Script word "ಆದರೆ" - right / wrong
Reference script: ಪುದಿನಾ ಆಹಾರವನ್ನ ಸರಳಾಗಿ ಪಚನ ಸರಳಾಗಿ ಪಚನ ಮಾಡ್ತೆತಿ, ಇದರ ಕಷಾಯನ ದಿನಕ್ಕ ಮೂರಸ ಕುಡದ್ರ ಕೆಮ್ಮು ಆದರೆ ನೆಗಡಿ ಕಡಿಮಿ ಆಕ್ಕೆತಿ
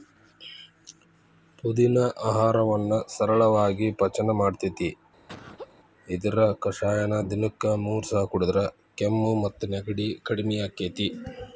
wrong